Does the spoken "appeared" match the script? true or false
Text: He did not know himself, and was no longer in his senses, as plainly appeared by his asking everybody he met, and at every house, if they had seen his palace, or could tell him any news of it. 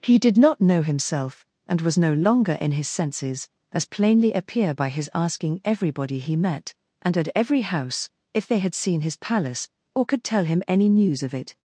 false